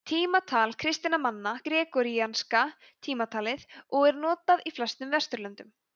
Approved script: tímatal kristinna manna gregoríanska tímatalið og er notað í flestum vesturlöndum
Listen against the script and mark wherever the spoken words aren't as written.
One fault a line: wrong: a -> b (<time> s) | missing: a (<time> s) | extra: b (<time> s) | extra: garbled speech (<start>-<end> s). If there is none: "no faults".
no faults